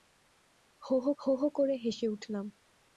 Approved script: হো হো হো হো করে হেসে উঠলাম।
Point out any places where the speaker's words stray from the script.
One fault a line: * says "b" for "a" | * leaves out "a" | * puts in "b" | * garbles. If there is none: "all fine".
all fine